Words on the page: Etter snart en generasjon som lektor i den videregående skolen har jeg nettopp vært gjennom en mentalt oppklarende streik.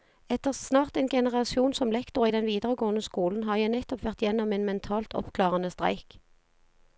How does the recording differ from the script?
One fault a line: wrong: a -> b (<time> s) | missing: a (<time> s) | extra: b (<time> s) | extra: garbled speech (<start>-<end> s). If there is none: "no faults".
no faults